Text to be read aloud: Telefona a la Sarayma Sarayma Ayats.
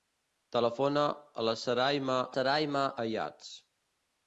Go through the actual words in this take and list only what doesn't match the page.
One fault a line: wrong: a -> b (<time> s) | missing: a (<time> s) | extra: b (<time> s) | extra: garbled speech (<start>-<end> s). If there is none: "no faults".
no faults